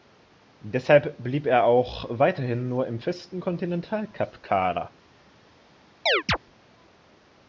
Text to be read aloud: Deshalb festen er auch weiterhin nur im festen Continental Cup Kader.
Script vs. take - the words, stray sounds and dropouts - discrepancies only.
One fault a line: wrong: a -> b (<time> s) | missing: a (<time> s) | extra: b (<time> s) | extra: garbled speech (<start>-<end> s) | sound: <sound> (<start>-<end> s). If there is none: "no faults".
wrong: festen -> blieb (1.2 s)
sound: chirp (6.1-6.4 s)